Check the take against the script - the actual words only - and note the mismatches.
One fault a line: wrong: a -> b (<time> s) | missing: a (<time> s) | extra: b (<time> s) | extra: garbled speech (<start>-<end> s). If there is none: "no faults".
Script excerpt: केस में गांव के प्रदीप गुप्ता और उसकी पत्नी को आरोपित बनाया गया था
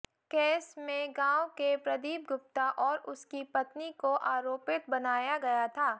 no faults